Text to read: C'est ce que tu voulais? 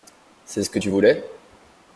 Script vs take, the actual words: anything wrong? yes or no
no